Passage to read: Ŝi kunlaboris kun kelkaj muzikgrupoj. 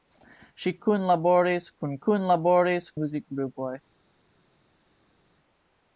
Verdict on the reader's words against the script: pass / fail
fail